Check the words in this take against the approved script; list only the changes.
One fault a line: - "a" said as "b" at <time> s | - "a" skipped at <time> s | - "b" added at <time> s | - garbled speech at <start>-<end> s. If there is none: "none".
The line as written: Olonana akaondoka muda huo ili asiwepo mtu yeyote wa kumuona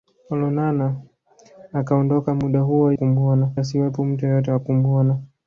- "ili" said as "kumuona" at 2.9 s